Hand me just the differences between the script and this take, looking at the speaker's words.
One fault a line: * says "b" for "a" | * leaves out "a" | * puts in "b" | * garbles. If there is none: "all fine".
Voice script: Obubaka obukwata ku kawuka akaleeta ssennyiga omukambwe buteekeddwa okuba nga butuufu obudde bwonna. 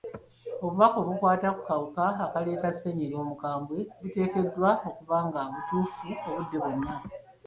all fine